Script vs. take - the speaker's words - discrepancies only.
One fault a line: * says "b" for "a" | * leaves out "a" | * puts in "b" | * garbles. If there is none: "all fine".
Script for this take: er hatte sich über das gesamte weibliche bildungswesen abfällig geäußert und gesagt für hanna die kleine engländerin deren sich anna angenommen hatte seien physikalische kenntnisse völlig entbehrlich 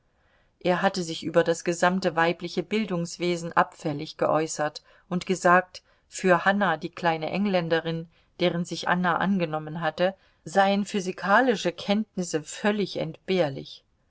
all fine